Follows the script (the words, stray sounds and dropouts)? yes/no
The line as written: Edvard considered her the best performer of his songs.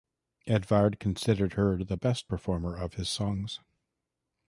yes